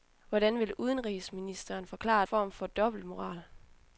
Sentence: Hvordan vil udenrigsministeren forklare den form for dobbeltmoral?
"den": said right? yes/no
no